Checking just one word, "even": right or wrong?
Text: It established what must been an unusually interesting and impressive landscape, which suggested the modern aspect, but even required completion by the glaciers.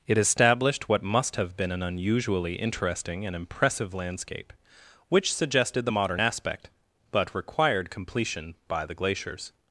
wrong